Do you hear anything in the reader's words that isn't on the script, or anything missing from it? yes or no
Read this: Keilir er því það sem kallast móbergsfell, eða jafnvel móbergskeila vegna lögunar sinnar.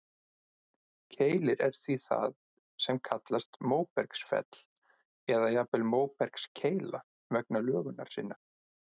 no